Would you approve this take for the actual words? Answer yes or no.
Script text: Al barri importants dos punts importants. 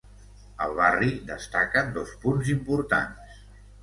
no